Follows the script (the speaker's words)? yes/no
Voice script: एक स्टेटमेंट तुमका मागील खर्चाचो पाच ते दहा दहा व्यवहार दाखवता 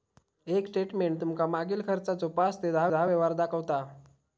yes